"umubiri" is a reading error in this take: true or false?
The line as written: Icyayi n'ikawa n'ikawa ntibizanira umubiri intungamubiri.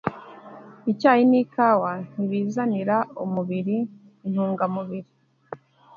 false